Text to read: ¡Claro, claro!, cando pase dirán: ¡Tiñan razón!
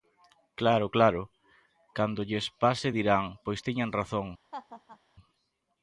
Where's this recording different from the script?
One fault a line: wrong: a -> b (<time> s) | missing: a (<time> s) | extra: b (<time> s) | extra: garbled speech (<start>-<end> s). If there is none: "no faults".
extra: lles (2.3 s)
extra: Pois (3.4 s)